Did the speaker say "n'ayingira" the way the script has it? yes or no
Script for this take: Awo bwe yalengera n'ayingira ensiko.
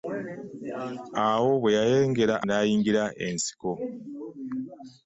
yes